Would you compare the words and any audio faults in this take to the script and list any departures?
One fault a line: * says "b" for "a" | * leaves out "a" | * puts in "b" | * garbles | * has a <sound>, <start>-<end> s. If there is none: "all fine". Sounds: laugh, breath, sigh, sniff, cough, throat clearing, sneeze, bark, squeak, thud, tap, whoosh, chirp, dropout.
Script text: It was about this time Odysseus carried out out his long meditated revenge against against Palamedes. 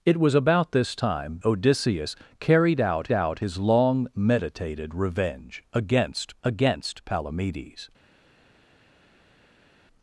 all fine